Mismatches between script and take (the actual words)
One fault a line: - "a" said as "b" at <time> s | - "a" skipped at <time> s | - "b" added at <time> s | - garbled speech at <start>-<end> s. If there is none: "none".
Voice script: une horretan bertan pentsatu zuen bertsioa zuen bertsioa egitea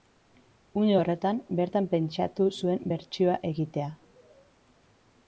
- "zuen bertsioa" skipped at 3.4 s